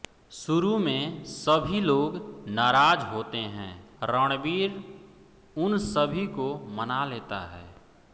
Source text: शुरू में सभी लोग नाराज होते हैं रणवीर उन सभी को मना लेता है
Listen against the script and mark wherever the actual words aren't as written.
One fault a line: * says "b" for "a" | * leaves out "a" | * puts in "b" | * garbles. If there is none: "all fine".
all fine